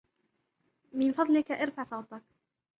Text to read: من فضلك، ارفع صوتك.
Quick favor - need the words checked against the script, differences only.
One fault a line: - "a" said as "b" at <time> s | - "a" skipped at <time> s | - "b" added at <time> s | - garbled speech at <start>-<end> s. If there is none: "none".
none